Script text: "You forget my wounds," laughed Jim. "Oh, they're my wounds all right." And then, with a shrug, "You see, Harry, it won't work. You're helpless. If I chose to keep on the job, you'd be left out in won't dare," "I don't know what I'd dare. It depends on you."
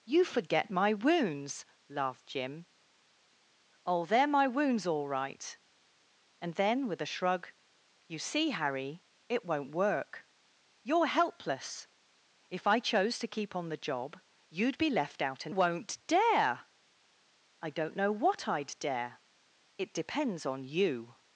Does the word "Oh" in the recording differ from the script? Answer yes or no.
no